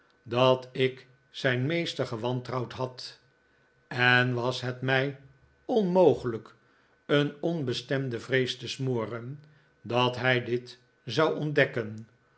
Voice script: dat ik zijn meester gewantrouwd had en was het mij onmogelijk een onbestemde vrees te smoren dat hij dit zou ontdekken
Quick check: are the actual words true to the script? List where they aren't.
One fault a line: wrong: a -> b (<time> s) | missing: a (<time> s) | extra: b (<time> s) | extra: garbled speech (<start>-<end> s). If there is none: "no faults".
no faults